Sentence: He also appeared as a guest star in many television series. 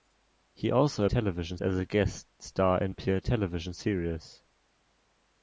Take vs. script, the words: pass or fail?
fail